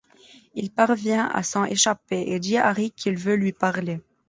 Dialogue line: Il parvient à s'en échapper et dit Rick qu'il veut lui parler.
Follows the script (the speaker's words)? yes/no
no